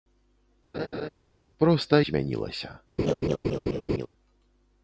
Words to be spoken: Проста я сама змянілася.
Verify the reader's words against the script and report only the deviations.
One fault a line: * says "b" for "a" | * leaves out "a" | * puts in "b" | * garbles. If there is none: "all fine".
* leaves out "я сама"